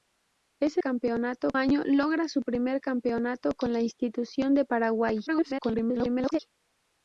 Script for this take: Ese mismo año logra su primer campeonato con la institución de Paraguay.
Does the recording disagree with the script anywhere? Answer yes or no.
yes